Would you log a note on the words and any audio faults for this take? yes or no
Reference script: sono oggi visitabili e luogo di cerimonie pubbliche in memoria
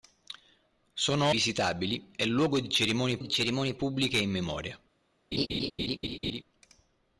yes